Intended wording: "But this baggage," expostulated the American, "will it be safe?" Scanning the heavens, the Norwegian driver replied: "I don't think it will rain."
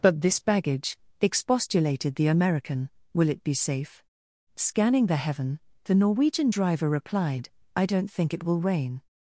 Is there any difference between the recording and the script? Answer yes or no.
yes